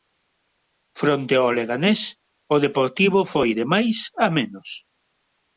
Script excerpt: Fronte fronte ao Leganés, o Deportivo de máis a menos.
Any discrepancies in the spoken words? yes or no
yes